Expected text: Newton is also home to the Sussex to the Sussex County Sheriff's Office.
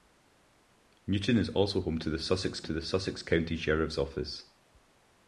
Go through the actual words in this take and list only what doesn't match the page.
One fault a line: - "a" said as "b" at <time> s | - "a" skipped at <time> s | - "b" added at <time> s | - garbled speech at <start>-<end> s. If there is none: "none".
none